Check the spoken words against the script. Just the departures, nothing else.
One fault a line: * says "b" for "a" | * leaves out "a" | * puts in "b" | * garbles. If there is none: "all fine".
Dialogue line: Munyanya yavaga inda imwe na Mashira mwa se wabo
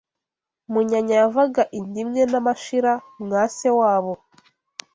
all fine